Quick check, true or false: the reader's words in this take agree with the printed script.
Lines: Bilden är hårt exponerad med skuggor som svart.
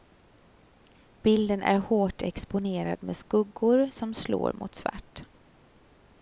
false